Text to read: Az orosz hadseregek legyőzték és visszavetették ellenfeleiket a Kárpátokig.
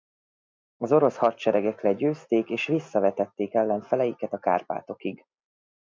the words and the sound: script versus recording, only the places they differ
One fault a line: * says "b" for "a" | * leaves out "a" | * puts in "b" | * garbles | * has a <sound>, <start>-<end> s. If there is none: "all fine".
all fine